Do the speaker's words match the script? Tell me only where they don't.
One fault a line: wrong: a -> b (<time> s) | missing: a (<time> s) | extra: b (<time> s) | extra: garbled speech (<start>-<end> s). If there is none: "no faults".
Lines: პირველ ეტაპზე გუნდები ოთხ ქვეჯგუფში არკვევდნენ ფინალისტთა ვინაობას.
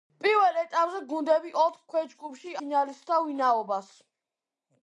missing: არკვევდნენ (2.5 s)